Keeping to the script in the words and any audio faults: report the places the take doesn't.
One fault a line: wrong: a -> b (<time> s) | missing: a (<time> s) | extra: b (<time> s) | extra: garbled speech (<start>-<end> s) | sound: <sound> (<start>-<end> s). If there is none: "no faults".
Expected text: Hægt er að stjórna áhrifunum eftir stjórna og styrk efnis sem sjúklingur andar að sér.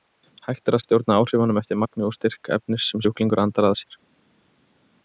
wrong: stjórna -> magni (1.8 s)